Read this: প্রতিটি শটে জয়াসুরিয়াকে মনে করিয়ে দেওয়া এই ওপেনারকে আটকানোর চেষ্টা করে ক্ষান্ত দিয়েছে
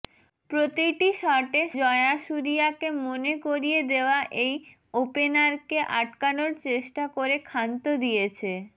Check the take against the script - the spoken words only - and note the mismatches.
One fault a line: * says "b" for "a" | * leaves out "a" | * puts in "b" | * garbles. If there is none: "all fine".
all fine